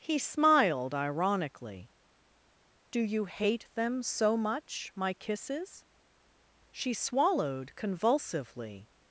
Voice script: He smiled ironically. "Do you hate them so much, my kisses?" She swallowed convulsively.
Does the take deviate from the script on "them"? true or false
false